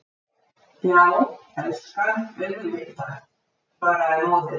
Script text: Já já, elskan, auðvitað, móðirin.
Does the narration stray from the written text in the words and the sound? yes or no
yes